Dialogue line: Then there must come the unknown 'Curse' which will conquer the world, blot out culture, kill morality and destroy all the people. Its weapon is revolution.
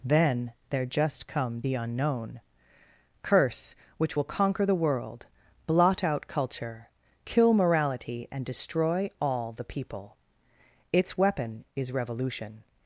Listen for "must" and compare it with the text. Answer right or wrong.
wrong